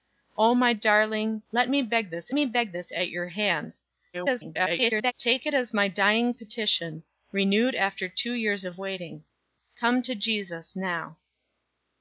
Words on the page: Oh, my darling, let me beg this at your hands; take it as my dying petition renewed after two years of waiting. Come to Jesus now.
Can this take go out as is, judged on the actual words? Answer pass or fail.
fail